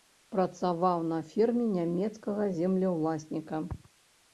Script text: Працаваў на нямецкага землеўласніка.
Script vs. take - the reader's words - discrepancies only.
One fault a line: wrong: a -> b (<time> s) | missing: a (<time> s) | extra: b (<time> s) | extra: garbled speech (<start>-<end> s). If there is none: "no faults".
extra: ферме (1.3 s)